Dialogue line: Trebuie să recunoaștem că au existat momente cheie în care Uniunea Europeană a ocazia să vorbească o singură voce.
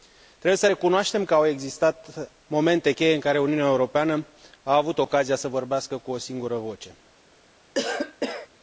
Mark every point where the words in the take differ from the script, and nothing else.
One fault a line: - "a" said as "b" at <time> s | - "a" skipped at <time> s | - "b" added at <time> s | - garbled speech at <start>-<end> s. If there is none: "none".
- "avut" added at 4.8 s
- "cu" added at 6.0 s